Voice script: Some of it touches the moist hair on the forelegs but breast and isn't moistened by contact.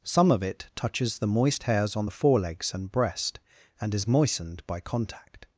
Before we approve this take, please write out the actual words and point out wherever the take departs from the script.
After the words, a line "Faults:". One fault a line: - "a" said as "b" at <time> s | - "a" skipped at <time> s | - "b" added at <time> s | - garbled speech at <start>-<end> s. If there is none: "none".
Some of it touches the moist hairs on the forelegs and breast and is moistened by contact.
Faults:
- "hair" said as "hairs" at 1.6 s
- "but" said as "and" at 2.7 s
- "isn't" said as "is" at 3.9 s